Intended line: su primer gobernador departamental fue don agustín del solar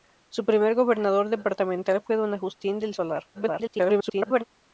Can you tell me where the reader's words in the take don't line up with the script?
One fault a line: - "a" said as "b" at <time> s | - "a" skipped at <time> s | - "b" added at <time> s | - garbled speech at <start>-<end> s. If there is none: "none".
- garbled speech at 3.3-4.4 s